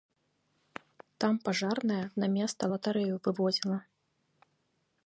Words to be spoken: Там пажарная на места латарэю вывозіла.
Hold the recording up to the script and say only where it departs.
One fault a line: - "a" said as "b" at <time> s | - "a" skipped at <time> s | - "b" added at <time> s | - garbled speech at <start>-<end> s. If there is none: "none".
none